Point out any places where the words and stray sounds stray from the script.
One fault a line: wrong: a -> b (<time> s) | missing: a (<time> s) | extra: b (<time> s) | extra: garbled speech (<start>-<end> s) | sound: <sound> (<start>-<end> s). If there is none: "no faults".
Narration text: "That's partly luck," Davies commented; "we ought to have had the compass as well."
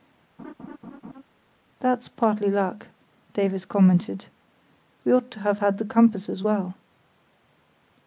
sound: laugh (0.4-1.2 s)